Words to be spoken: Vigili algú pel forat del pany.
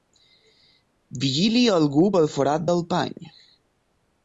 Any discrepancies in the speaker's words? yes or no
no